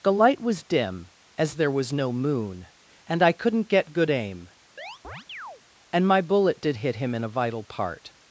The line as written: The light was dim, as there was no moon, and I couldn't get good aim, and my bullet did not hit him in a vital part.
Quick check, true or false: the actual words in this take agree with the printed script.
false